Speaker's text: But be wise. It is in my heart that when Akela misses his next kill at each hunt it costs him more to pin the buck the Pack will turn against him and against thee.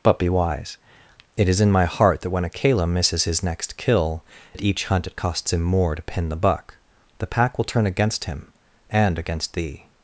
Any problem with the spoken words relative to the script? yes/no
no